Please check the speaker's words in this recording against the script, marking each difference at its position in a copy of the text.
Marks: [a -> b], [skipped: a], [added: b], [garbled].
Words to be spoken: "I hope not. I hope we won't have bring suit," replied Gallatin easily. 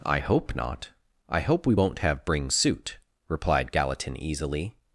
"I hope not. I hope we won't have bring suit," replied Gallatin easily.